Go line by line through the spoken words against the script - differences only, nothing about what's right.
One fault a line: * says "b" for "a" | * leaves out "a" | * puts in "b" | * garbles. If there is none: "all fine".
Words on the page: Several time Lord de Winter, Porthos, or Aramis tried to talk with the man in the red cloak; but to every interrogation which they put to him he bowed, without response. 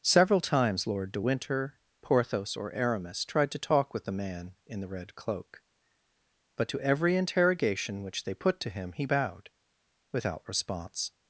* says "times" for "time"